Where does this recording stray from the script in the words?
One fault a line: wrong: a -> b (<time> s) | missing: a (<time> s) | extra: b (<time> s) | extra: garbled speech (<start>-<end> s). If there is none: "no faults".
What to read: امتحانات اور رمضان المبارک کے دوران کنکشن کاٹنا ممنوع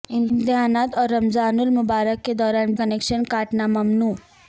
no faults